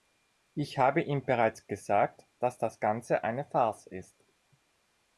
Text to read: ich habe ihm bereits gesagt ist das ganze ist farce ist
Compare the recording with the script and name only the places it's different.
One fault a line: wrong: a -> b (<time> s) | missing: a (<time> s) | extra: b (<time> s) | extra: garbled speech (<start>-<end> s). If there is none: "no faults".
wrong: ist -> dass (2.4 s)
wrong: ist -> eine (3.2 s)